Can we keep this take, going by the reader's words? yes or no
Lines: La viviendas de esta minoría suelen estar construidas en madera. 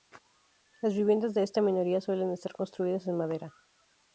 no